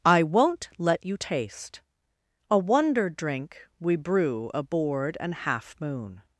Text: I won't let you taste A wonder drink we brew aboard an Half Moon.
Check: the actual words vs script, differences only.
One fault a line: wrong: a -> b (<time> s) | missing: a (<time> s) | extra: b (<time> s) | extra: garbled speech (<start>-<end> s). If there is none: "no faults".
no faults